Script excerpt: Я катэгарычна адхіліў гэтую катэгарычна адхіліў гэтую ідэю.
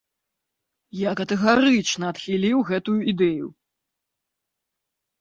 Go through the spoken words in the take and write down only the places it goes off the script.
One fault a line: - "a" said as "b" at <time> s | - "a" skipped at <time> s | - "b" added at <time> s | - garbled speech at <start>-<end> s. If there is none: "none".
- "катэгарычна адхіліў гэтую" skipped at 3.0 s